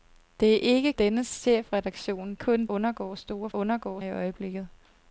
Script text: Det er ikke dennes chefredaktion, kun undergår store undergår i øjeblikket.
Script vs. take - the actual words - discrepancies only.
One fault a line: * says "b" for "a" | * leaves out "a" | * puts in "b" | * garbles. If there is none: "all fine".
all fine